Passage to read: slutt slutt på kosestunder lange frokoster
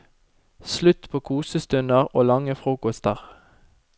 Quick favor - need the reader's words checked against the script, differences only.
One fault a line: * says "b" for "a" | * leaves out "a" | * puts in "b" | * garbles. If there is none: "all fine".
* leaves out "slutt"
* puts in "og"